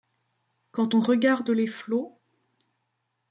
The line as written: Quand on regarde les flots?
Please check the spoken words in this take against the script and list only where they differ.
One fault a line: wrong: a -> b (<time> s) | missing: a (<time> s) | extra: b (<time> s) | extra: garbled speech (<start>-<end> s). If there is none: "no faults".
no faults